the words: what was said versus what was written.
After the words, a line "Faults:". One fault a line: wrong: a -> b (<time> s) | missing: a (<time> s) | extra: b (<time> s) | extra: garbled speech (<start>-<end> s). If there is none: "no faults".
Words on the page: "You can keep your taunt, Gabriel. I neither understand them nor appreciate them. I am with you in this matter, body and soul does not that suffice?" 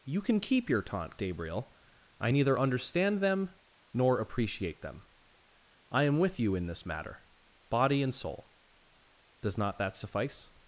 "You can keep your taunt, Gabriel. I neither understand them nor appreciate them. I am with you in this matter, body and soul does not that suffice?"
Faults:
no faults